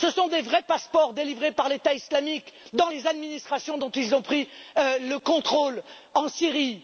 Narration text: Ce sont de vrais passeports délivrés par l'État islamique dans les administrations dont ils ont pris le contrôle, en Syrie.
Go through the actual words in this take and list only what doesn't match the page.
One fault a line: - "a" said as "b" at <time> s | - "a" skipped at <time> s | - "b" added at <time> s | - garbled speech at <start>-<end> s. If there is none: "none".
none